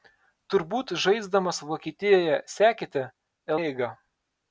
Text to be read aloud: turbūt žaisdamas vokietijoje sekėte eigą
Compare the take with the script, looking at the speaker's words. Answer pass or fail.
pass